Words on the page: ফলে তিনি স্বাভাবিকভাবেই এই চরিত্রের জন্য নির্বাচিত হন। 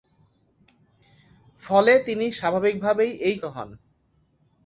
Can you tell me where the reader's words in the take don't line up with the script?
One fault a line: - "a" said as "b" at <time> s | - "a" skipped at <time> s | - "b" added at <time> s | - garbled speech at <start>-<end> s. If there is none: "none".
- "চরিত্রের জন্য নির্বাচিত" skipped at 3.4 s